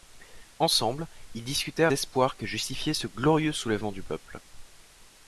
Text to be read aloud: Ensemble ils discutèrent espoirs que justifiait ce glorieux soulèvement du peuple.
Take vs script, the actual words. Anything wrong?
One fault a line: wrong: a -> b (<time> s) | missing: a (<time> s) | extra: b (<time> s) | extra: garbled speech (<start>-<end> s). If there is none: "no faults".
no faults